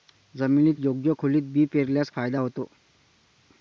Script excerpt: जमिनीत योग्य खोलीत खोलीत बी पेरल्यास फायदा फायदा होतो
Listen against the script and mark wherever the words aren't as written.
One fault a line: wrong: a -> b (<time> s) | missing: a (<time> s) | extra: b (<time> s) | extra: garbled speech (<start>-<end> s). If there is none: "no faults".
missing: खोलीत (1.4 s)
missing: फायदा (2.4 s)